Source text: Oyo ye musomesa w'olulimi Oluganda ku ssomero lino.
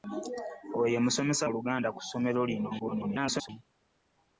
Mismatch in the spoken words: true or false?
true